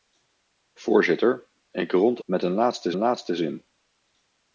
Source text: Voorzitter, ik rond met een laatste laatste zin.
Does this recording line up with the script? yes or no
yes